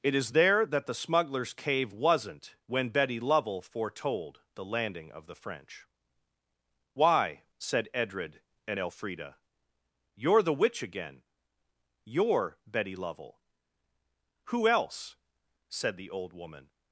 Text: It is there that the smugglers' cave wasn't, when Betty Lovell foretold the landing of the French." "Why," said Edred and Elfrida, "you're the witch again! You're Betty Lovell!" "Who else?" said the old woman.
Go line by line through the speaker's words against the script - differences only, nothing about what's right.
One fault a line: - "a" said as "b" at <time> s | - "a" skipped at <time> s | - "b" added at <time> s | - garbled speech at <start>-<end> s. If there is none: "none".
none